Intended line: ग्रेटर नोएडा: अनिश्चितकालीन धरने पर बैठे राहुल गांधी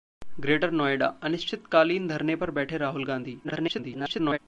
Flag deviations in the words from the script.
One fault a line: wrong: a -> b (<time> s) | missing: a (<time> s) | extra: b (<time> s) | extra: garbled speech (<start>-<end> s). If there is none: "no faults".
extra: garbled speech (3.4-4.4 s)